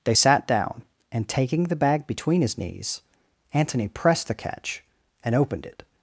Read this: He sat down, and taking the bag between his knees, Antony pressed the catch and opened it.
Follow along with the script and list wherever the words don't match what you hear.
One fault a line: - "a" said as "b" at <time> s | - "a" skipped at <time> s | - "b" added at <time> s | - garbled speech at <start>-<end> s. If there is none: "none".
- "He" said as "They" at 0.0 s